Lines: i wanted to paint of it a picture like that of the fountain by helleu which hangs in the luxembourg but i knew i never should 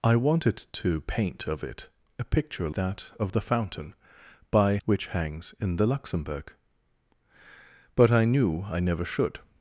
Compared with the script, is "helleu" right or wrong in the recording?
wrong